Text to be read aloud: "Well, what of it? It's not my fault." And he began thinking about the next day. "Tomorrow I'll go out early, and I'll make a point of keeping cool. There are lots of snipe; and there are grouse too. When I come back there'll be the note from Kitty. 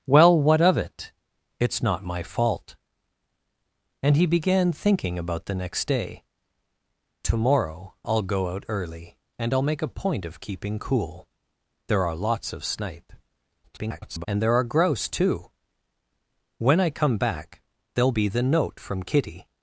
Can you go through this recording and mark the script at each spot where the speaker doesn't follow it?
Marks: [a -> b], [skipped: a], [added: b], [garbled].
"Well, what of it? It's not my fault." And he began thinking about the next day. "Tomorrow I'll go out early, and I'll make a point of keeping cool. There are lots of snipe; [garbled] and there are grouse too. When I come back there'll be the note from Kitty.